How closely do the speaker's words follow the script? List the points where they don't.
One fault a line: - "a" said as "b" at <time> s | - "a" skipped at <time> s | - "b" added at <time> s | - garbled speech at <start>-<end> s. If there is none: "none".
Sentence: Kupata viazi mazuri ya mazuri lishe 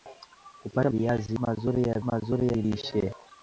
none